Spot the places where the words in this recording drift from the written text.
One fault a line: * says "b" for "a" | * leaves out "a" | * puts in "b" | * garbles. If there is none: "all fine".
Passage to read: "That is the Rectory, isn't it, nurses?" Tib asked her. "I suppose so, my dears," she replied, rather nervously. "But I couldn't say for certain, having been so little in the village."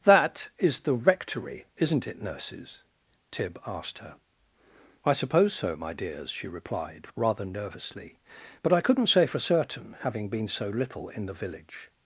all fine